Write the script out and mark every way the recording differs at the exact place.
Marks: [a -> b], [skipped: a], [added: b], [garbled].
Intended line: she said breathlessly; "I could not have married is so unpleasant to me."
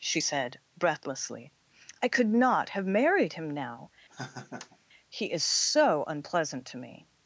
she said breathlessly; "I could not have married [added: him now He] is so unpleasant to me."